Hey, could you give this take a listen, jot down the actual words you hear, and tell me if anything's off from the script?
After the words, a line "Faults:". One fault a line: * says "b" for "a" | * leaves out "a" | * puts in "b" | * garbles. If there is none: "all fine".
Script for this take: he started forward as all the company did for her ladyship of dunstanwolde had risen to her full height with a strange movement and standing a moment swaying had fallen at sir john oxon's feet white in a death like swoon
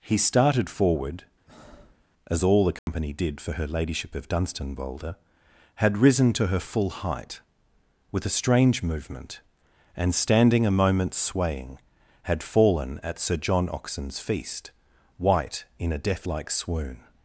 he started forward as all the company did for her ladyship of dunstanwolde had risen to her full height with a strange movement and standing a moment swaying had fallen at sir john oxon's feast white in a death like swoon
Faults:
* says "feast" for "feet"